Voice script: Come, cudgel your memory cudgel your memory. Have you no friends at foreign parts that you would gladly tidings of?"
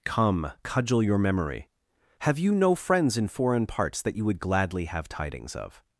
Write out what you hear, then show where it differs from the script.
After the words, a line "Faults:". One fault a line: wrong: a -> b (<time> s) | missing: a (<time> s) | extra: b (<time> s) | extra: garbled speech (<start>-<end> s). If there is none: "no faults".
Come, cudgel your memory. Have you no friends in foreign parts that you would gladly have tidings of?"
Faults:
missing: cudgel your memory (1.7 s)
wrong: at -> in (3.2 s)
extra: have (4.9 s)